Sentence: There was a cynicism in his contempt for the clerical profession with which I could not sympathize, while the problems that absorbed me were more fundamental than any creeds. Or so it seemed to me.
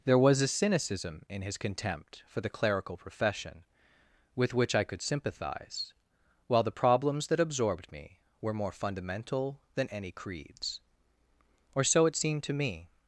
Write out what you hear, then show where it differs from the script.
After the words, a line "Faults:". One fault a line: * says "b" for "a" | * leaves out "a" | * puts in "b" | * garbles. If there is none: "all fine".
There was a cynicism in his contempt for the clerical profession with which I could sympathize, while the problems that absorbed me were more fundamental than any creeds. Or so it seemed to me.
Faults:
* leaves out "not"